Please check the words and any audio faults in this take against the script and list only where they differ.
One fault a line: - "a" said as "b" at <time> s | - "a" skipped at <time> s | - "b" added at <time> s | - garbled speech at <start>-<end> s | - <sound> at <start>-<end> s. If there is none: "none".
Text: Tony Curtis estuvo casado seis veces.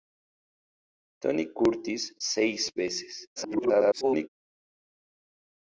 - "estuvo casado" skipped at 2.2 s
- garbled speech at 3.4-4.3 s